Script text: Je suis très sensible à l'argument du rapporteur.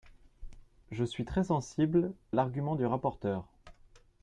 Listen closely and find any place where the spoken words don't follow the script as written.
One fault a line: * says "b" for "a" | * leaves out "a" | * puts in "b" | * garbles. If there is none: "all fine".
* leaves out "à"